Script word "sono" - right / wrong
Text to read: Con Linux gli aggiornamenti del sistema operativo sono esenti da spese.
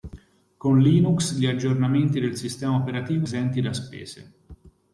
wrong